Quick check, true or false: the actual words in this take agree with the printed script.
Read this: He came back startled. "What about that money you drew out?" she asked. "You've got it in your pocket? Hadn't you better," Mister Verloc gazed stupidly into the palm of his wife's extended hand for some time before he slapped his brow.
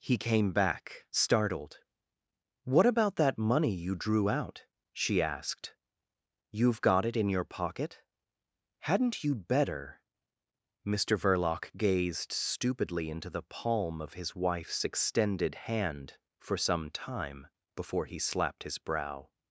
true